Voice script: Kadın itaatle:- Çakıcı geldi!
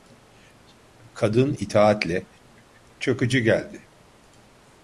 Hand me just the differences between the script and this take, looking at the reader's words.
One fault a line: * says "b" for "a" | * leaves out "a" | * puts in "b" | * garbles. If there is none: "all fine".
all fine